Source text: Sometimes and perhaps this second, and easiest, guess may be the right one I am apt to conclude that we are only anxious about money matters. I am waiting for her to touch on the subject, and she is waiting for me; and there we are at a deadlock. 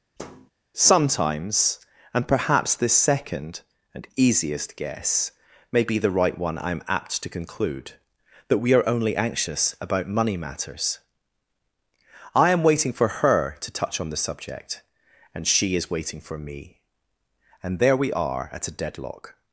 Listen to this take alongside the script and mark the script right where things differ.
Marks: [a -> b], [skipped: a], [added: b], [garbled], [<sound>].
[thud] Sometimes and perhaps this second, and easiest, guess may be the right one I am apt to conclude that we are only anxious about money matters. I am waiting for her to touch on the subject, and she is waiting for me; and there we are at a deadlock.